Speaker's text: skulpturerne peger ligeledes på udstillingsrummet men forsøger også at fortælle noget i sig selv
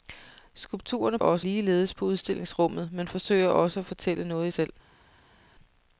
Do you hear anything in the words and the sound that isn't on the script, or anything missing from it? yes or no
yes